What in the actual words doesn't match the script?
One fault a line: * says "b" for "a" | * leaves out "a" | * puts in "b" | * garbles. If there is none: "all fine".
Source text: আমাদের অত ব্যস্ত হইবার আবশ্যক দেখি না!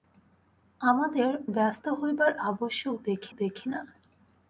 * leaves out "অত"
* puts in "দেখি"